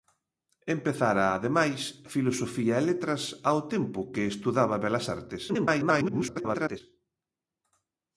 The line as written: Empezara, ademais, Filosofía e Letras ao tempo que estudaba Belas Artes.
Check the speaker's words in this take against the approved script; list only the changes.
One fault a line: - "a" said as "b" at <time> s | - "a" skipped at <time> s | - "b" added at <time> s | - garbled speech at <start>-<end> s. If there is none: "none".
- garbled speech at 5.5-6.8 s